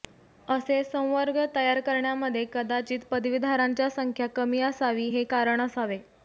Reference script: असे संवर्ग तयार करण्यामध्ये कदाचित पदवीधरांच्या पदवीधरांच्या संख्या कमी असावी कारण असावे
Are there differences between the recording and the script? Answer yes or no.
yes